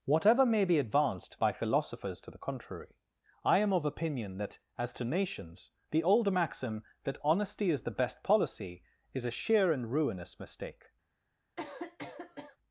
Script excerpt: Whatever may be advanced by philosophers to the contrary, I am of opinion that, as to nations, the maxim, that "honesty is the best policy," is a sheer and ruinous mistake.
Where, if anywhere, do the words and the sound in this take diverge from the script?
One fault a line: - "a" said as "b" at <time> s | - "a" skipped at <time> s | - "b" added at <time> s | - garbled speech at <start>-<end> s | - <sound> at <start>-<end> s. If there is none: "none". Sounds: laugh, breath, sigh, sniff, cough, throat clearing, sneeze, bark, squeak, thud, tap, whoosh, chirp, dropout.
- "old" added at 6.0 s
- cough at 11.6-12.6 s